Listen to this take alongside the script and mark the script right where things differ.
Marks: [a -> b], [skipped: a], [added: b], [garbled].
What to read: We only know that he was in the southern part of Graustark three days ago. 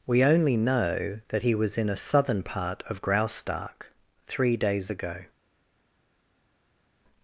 We only know that he was in [the -> a] southern part of Graustark three days ago.